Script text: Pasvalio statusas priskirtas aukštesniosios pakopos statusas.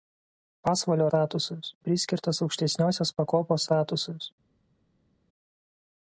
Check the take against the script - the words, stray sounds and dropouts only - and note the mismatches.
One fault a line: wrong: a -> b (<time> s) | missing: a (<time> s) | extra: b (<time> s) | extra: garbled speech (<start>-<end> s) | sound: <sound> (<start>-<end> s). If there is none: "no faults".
no faults